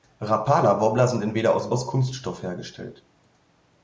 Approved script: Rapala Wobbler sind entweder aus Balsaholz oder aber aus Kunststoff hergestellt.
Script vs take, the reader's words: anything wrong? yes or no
yes